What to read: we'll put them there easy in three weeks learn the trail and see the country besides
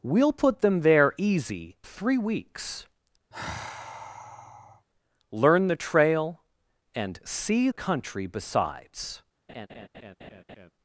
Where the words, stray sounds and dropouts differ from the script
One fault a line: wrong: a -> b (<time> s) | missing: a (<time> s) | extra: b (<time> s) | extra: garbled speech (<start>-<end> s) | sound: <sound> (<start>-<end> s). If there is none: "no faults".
missing: in (1.8 s)
sound: sigh (3.3-4.9 s)
missing: the (7.7 s)
sound: laugh (9.5-10.7 s)